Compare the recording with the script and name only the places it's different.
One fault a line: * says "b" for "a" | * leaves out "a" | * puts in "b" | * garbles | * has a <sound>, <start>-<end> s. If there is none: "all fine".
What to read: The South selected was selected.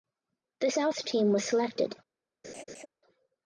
* says "team" for "selected"
* has a laugh, 2.4-2.9 s